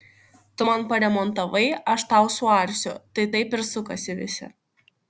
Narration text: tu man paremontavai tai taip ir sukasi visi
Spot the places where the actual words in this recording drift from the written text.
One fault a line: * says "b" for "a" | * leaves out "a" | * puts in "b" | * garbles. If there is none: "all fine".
* puts in "aš tau suarsiu"